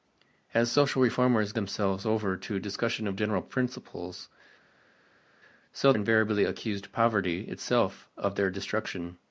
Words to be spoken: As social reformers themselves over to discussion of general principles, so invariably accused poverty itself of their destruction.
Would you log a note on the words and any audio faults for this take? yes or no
no